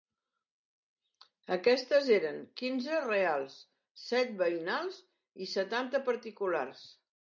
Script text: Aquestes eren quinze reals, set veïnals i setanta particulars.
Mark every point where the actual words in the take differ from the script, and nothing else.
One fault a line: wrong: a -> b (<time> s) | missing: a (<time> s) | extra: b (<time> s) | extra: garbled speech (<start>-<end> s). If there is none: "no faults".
no faults